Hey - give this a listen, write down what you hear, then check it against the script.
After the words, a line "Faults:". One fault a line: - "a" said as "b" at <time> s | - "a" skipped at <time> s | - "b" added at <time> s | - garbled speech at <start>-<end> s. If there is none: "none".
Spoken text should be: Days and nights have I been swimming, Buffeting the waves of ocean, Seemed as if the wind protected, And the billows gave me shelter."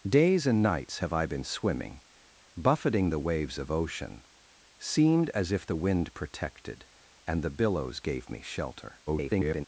Days and nights have I been swimming, Buffeting the waves of ocean, Seemed as if the wind protected, And the billows gave me shelter." [garbled]
Faults:
- garbled speech at 9.1-9.7 s